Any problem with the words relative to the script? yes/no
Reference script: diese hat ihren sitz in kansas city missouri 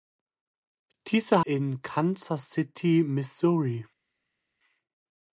yes